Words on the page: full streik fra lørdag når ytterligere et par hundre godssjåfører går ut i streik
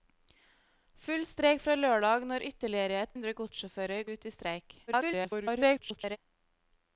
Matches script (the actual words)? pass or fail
fail